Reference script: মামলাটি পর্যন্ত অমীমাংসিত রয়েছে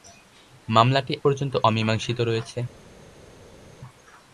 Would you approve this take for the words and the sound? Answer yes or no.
yes